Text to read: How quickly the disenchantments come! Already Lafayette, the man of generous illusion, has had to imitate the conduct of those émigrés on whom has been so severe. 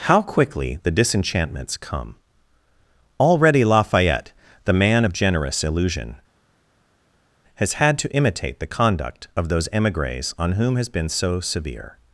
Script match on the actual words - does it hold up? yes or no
yes